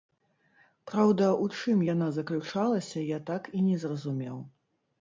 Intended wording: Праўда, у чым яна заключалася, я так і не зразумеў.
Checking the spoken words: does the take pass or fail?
pass